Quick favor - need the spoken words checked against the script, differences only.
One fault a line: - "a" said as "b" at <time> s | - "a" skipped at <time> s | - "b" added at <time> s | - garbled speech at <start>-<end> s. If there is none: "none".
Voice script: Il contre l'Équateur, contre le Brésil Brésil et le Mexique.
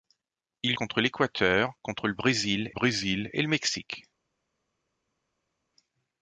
none